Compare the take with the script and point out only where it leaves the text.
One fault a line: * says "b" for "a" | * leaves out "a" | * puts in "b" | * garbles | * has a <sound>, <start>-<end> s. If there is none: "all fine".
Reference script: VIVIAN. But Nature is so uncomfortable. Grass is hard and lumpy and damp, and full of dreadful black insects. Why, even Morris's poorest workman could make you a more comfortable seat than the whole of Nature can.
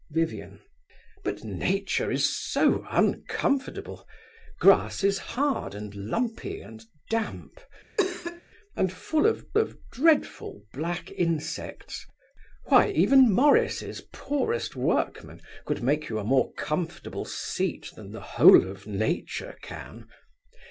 * has a cough, 8.0-8.4 s
* puts in "of"